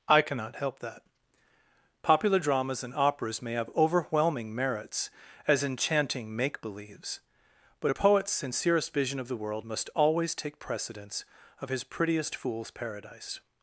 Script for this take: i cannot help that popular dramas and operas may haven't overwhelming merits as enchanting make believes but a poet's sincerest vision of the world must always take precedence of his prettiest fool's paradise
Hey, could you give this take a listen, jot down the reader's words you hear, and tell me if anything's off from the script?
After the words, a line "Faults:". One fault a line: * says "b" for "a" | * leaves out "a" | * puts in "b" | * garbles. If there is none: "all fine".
i cannot help that popular dramas and operas may have overwhelming merits as enchanting make believes but a poet's sincerest vision of the world must always take precedence of his prettiest fool's paradise
Faults:
* says "have" for "haven't"